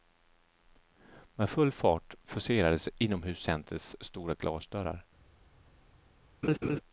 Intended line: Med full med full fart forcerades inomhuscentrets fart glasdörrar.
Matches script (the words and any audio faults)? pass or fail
fail